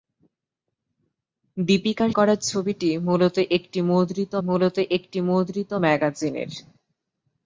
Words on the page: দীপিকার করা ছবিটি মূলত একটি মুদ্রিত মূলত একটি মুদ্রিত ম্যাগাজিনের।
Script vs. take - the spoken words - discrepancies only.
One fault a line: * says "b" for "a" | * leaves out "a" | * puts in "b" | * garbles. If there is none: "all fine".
all fine